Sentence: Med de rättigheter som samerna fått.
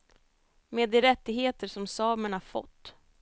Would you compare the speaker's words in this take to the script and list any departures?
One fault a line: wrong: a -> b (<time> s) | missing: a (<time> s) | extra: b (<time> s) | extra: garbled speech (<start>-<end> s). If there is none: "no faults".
no faults